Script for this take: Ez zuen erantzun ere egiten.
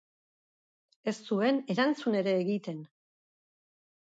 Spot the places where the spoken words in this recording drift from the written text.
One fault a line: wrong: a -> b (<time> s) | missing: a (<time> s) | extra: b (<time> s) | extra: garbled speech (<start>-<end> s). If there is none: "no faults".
no faults